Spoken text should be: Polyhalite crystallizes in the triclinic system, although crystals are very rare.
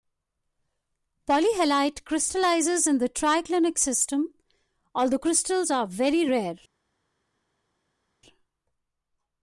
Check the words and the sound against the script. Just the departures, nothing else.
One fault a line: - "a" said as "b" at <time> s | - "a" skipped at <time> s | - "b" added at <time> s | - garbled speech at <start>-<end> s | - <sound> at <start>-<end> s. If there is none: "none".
none